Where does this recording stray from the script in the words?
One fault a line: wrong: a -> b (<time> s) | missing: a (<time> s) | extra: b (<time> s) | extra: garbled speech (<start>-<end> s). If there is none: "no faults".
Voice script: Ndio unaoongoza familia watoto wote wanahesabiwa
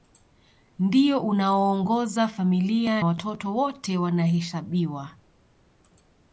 no faults